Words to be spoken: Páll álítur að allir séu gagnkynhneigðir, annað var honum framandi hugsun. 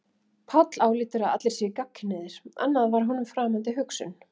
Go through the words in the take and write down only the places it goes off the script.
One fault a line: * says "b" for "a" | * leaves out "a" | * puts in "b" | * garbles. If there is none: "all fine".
all fine